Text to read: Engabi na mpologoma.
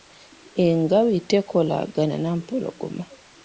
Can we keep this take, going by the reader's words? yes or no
no